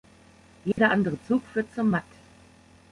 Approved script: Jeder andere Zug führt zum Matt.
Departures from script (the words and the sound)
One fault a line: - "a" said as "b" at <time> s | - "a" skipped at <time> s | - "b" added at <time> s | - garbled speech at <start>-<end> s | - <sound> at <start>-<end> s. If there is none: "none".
- dropout at 0.7-0.8 s